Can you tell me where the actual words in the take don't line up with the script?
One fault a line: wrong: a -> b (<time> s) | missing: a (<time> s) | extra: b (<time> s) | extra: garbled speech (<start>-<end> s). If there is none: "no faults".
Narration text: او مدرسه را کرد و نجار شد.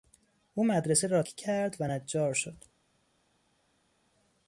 no faults